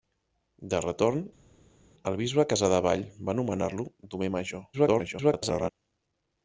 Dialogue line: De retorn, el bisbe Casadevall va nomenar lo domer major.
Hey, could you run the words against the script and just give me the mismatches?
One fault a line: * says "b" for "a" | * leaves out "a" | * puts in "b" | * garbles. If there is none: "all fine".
* garbles